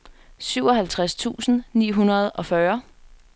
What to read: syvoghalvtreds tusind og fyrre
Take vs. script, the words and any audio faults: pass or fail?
fail